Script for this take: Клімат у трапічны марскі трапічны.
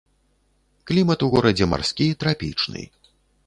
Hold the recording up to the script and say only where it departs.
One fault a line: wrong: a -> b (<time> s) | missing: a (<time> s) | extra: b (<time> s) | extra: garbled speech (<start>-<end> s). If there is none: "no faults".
wrong: трапічны -> горадзе (1.3 s)